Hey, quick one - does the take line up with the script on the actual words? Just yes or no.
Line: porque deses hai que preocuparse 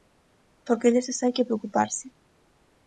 yes